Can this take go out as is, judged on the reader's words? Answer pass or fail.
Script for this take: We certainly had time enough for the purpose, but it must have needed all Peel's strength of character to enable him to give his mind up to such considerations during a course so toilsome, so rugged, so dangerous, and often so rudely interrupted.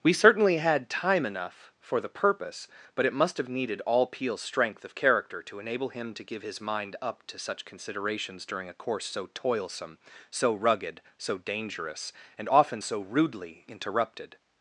pass